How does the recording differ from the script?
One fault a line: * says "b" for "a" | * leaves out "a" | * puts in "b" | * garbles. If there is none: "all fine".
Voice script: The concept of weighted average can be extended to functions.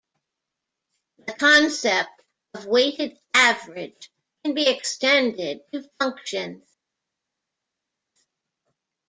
all fine